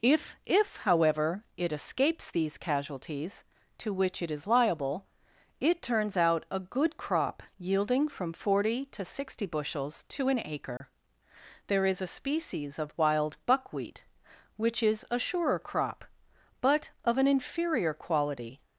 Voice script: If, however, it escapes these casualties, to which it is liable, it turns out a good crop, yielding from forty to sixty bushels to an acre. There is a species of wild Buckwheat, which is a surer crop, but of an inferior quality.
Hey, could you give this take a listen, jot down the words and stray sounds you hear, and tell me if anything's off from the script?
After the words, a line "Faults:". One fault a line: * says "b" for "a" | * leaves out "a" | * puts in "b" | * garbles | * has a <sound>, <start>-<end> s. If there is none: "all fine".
If if, however, it escapes these casualties, to which it is liable, it turns out a good crop, yielding from forty to sixty bushels to an acre. There is a species of wild Buckwheat, which is a surer crop, but of an inferior quality.
Faults:
* puts in "if"
* has a dropout, 10.8-10.8 s